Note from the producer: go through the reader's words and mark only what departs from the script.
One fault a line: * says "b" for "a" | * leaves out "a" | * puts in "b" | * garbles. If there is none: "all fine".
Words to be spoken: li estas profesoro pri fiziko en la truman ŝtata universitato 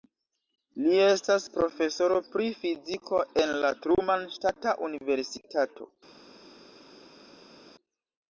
all fine